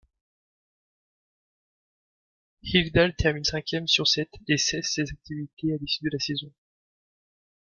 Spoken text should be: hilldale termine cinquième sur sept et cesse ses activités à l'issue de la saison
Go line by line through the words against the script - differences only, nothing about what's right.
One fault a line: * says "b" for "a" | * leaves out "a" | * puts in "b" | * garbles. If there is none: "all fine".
all fine